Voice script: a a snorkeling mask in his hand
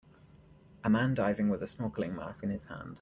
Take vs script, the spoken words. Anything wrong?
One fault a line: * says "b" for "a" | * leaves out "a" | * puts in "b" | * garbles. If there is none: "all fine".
* puts in "man diving with"